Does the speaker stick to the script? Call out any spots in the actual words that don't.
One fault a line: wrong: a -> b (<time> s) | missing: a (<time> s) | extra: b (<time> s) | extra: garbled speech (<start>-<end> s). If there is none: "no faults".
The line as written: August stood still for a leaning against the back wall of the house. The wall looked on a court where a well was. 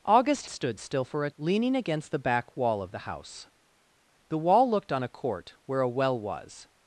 no faults